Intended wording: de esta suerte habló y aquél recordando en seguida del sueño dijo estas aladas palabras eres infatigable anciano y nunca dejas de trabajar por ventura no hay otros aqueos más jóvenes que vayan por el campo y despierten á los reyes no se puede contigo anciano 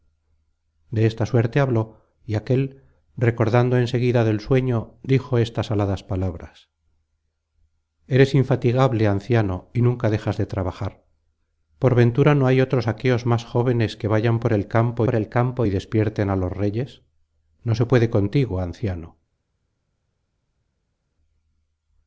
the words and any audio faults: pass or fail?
fail